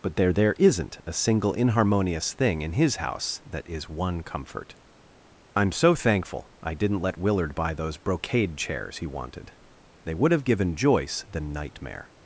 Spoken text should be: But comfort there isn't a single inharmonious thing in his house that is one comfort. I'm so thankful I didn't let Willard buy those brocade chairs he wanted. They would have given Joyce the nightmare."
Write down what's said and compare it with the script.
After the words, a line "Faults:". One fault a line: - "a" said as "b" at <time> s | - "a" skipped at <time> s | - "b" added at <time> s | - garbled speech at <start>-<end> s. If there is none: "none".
But there there isn't a single inharmonious thing in his house that is one comfort. I'm so thankful I didn't let Willard buy those brocade chairs he wanted. They would have given Joyce the nightmare."
Faults:
- "comfort" said as "there" at 0.1 s